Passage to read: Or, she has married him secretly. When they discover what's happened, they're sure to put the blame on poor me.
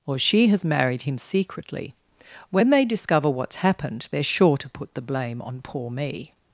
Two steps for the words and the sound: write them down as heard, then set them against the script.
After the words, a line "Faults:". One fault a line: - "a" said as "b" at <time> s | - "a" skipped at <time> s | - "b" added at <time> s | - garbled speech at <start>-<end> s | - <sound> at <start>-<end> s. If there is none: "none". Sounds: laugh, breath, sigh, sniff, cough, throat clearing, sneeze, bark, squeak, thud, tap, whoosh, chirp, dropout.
Or, she has married him secretly. When they discover what's happened, they're sure to put the blame on poor me.
Faults:
none